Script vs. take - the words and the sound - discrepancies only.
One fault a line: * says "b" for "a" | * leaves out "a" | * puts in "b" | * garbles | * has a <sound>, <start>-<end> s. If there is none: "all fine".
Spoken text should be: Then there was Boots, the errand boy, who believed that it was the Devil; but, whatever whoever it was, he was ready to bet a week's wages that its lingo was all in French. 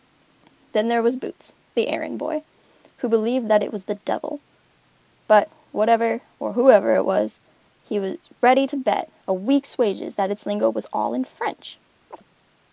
* puts in "or"
* has a chirp, 12.1-12.2 s